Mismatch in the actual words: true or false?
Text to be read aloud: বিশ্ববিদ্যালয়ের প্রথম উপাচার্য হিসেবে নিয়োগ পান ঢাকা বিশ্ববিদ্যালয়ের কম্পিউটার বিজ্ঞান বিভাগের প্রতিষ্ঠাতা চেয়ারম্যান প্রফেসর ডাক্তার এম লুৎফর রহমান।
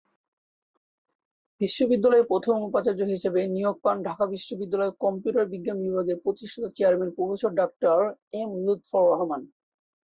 false